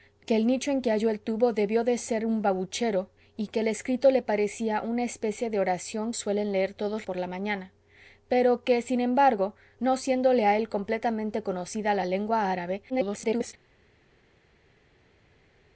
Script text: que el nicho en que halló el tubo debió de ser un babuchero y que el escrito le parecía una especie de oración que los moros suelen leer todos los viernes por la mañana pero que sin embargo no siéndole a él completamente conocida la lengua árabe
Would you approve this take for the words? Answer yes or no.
no